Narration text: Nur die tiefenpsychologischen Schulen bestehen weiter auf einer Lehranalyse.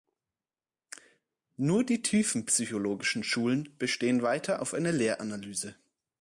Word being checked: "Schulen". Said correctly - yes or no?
yes